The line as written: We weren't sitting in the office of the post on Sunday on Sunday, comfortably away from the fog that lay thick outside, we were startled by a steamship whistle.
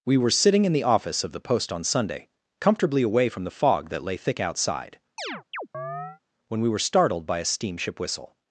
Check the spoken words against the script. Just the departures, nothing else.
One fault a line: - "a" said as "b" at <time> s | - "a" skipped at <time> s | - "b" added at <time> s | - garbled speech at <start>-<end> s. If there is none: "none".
- "weren't" said as "were" at 0.2 s
- "on Sunday" skipped at 2.3 s
- "when" added at 6.5 s